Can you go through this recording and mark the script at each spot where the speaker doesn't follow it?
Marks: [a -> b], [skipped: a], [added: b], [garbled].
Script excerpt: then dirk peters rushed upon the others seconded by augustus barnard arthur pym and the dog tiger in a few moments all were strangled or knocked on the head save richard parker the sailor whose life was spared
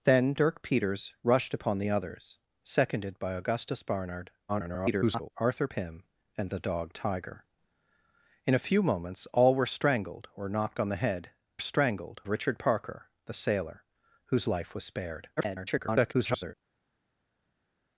then dirk peters rushed upon the others seconded by augustus barnard [garbled] arthur pym and the dog tiger in a few moments all were strangled or knocked on the head [save -> strangled] richard parker the sailor whose life was spared [garbled]